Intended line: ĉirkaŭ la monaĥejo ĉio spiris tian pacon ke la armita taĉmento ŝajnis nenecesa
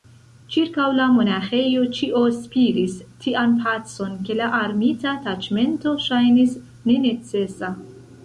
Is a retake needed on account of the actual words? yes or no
no